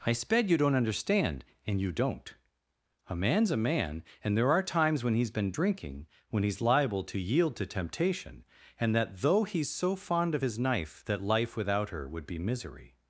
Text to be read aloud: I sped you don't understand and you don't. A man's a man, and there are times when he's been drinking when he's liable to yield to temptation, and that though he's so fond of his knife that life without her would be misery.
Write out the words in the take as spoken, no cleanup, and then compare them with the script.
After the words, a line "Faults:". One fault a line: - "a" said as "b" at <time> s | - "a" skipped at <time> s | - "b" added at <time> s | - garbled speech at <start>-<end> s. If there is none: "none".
I sped you don't understand and you don't. A man's a man, and there are times when he's been drinking when he's liable to yield to temptation, and that though he's so fond of his knife that life without her would be misery.
Faults:
none